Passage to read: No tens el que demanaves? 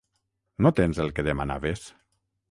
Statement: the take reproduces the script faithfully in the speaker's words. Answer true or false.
true